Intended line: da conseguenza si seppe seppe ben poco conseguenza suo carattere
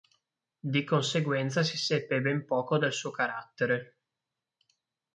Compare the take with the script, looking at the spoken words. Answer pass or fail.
fail